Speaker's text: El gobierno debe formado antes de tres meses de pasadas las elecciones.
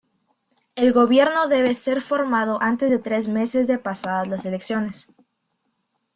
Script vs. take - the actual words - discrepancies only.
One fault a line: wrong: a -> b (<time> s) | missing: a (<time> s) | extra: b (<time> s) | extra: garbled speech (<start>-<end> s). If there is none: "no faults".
extra: ser (1.8 s)